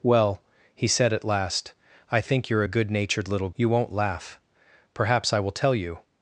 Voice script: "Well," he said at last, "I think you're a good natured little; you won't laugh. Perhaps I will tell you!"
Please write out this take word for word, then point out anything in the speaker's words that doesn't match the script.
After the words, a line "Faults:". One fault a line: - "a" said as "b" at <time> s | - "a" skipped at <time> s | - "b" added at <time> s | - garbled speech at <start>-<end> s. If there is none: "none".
"Well," he said at last, "I think you're a good natured little; you won't laugh. Perhaps I will tell you!"
Faults:
none